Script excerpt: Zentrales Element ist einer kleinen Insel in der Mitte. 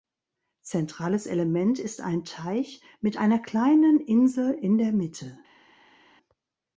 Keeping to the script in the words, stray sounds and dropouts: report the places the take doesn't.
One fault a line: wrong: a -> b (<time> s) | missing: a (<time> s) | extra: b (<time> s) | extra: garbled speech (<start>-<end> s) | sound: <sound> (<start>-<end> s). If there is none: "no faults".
extra: ein Teich mit (2.0 s)